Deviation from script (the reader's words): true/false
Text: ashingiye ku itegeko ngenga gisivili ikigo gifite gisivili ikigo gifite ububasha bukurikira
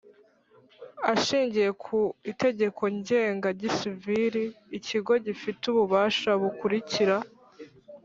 true